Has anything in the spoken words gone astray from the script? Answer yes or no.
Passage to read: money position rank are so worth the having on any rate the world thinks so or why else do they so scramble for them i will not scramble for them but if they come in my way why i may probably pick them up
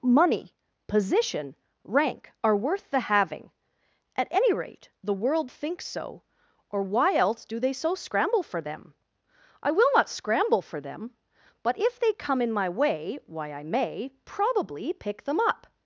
yes